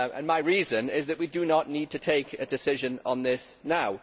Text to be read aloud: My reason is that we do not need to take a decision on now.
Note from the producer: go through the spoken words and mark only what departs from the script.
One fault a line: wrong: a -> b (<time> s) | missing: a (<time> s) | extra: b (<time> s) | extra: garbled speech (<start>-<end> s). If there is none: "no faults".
extra: this (3.2 s)